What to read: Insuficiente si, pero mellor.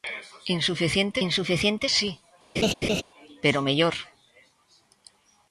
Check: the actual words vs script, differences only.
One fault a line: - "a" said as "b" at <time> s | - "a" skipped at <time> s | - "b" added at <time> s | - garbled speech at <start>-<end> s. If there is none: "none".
- "insuficiente" added at 1.3 s